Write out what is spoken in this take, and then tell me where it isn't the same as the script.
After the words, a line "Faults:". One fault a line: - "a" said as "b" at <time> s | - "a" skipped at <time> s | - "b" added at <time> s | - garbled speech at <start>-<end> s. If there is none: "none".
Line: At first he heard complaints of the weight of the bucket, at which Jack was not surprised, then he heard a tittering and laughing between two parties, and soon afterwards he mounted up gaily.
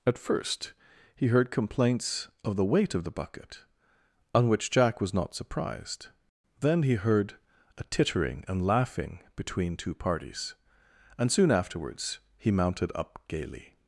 At first he heard complaints of the weight of the bucket, on which Jack was not surprised, then he heard a tittering and laughing between two parties, and soon afterwards he mounted up gaily.
Faults:
- "at" said as "on" at 4.3 s